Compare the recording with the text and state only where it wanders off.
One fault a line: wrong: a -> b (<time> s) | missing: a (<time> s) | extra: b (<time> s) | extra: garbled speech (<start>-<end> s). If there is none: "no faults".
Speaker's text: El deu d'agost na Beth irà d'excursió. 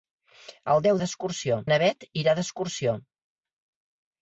wrong: d'agost -> d'excursió (1.0 s)